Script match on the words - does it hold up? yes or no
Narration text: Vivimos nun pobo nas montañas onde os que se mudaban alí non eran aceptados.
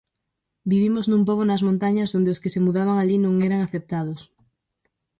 yes